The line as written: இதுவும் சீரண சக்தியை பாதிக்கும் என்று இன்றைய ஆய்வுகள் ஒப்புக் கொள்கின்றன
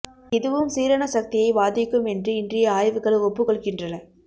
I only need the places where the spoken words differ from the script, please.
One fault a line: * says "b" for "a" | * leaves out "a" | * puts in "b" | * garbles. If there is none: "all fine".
all fine